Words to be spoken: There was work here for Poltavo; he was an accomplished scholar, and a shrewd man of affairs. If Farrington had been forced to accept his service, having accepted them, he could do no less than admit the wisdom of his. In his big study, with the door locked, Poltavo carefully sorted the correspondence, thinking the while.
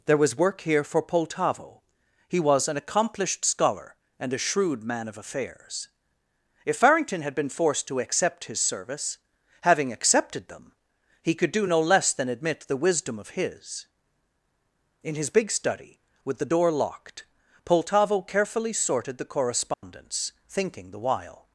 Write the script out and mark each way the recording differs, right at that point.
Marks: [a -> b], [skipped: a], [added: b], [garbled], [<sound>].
There was work here for Poltavo; he was an accomplished scholar, and a shrewd man of affairs. If Farrington had been forced to accept his service, having accepted them, he could do no less than admit the wisdom of his. In his big study, with the door locked, Poltavo carefully sorted the correspondence, [dropout] thinking the while.